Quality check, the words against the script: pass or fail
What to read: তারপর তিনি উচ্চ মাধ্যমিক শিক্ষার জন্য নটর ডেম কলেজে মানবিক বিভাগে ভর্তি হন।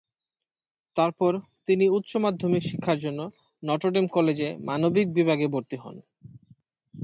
pass